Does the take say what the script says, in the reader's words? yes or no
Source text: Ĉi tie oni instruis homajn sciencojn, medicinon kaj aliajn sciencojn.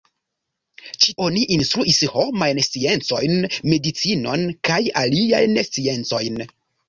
no